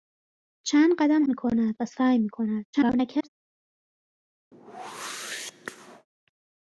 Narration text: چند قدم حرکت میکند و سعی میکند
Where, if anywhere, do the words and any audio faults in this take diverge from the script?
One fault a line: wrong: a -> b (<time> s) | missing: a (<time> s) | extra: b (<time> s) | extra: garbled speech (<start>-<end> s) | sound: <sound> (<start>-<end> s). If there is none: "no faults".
missing: حرکت (1.2 s)
extra: garbled speech (2.7-3.3 s)
sound: whoosh (4.5-6.1 s)